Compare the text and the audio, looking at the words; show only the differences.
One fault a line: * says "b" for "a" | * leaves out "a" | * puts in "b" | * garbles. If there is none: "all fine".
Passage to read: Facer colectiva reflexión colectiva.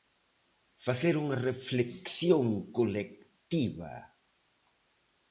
* says "unha" for "colectiva"